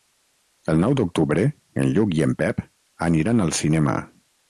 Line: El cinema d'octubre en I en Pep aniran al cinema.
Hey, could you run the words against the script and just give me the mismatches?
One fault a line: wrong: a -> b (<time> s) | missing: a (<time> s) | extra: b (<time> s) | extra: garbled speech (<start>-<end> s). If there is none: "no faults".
wrong: cinema -> nou (0.8 s)
extra: Lluc (2.0 s)